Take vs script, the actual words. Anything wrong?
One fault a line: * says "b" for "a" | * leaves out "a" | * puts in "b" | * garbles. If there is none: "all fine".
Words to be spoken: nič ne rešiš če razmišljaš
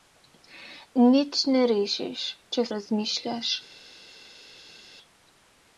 all fine